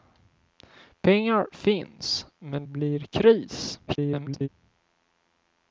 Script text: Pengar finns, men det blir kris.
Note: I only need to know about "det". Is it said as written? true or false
false